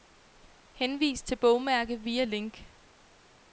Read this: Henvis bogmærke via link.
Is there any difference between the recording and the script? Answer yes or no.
yes